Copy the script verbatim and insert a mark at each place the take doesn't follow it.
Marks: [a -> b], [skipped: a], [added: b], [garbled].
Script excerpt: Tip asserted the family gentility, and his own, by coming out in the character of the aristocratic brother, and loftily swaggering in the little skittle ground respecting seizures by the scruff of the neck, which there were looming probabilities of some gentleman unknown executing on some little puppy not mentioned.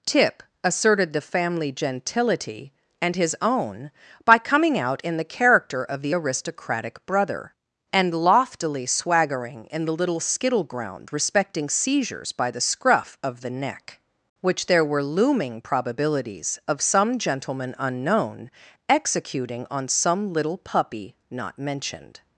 Tip asserted the family gentility, and his own, by coming out in the character of the aristocratic brother, and loftily swaggering in the little skittle ground respecting seizures by the scruff of the neck, which there were looming probabilities of some gentleman unknown executing on some little puppy not mentioned.